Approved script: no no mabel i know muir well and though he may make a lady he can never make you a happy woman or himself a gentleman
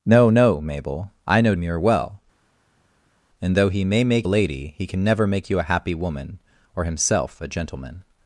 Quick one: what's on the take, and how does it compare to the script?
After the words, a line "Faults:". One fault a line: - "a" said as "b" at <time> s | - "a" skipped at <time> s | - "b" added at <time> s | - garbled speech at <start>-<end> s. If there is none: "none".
no no mabel i know muir well and though he may make a lady he can never make you a happy woman or himself a gentleman
Faults:
none